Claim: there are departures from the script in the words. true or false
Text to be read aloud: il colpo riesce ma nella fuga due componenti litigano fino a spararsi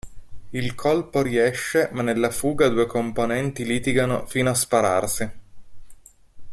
false